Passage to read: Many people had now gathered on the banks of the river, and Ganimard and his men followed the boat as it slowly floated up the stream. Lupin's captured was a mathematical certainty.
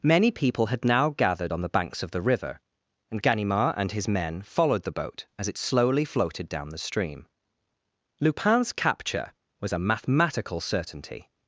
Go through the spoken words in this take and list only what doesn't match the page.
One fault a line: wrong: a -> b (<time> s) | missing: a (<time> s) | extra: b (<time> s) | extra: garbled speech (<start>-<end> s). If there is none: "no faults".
wrong: up -> down (6.5 s)
wrong: captured -> capture (8.7 s)